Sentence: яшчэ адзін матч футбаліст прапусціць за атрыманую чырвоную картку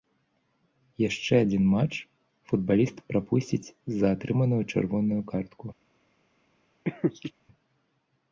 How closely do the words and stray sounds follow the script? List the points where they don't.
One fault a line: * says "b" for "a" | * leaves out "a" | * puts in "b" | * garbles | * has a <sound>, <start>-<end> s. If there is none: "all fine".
* has a laugh, 6.9-7.3 s